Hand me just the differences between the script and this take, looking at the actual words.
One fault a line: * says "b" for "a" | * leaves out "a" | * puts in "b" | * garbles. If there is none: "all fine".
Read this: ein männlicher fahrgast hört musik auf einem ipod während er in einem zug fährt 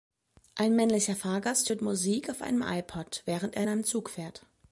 all fine